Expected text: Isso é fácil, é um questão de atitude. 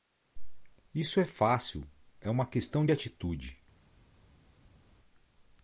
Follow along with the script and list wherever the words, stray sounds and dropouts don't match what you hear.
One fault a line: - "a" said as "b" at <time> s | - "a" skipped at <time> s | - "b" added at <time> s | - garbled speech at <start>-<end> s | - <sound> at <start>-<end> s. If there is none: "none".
- "um" said as "uma" at 2.3 s